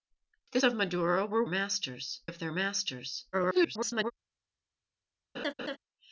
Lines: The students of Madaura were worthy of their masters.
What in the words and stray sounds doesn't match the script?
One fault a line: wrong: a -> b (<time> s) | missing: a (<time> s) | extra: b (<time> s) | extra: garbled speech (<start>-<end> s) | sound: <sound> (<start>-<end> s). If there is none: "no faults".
missing: students (0.6 s)
wrong: worthy -> masters (1.5 s)
extra: garbled speech (3.3-4.1 s)
sound: laugh (5.3-5.8 s)